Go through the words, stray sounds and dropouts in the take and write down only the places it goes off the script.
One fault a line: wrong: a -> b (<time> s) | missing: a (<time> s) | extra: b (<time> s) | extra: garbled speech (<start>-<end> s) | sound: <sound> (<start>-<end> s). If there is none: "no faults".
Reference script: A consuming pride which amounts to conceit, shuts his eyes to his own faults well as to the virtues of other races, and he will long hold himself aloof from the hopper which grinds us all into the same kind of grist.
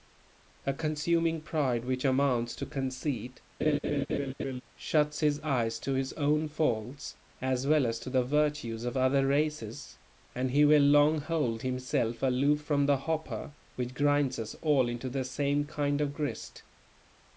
sound: laugh (3.6-4.6 s)
extra: as (7.4 s)